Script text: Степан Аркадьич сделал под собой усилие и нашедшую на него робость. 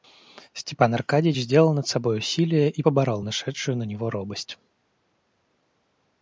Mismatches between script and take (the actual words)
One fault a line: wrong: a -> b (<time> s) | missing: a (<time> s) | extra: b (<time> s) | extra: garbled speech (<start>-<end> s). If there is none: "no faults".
wrong: под -> над (1.7 s)
extra: поборол (2.8 s)